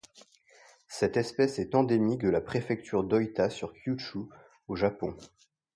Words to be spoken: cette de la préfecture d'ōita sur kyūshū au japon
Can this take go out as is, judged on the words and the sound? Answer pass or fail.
fail